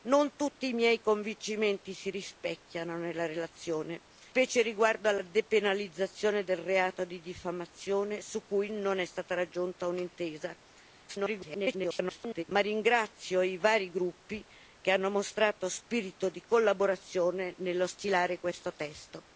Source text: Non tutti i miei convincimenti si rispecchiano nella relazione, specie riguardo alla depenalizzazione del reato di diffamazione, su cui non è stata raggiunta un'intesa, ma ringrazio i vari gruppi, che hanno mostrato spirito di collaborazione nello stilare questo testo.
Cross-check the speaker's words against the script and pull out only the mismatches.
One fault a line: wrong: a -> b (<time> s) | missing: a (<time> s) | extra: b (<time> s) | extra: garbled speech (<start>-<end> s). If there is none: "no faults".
extra: garbled speech (11.1-12.4 s)